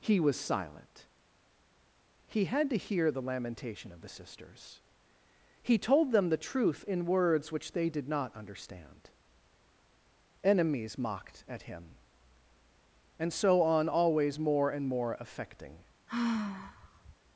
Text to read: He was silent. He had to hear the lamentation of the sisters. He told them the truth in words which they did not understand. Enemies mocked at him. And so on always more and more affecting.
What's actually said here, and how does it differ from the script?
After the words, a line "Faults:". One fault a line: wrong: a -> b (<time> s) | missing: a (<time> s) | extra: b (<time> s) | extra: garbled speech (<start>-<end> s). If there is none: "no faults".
He was silent. He had to hear the lamentation of the sisters. He told them the truth in words which they did not understand. Enemies mocked at him. And so on always more and more affecting.
Faults:
no faults